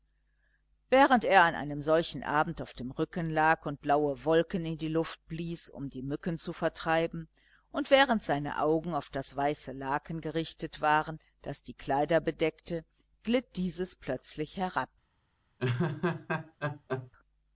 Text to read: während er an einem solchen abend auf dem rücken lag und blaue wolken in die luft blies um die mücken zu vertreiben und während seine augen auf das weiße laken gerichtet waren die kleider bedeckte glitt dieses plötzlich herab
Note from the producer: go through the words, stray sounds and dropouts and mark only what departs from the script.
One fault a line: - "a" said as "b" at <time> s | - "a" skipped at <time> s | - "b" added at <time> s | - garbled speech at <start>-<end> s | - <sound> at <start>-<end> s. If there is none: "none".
- "das" added at 11.4 s
- laugh at 15.6-17.1 s